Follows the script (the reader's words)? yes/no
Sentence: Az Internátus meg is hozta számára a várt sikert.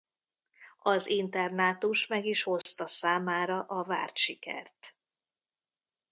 yes